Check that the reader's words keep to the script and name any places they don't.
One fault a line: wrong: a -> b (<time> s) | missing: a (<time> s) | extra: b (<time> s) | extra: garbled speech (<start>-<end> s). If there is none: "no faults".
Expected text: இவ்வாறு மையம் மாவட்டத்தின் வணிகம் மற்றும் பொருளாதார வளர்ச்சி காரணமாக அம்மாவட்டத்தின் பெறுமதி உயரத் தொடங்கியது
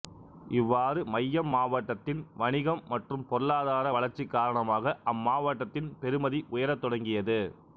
no faults